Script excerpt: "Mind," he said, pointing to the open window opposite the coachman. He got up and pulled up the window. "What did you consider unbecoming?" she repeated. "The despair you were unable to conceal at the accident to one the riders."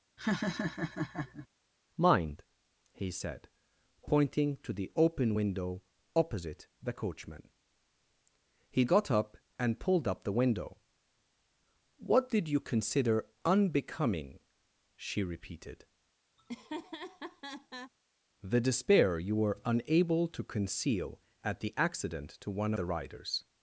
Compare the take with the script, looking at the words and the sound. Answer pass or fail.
fail